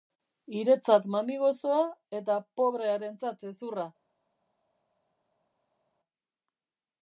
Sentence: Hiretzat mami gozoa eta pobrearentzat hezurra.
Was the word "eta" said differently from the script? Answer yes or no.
no